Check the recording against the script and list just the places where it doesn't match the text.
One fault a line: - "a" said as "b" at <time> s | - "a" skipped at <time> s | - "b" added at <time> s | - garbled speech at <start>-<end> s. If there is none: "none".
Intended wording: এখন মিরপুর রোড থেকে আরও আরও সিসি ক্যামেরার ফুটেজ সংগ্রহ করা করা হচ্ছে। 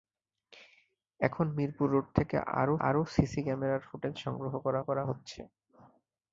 none